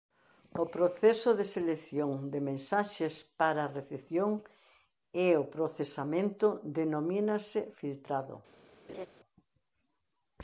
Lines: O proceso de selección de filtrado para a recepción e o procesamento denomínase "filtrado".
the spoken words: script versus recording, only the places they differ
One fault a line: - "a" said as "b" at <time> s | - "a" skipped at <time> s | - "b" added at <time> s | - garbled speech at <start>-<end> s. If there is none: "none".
- "filtrado" said as "mensaxes" at 2.5 s